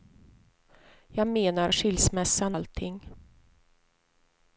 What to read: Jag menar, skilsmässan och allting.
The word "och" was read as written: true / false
false